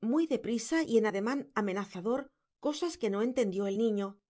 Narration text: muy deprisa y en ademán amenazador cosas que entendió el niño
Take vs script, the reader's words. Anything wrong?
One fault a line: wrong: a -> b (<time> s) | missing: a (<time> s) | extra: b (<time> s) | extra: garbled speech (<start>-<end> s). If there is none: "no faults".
extra: no (3.1 s)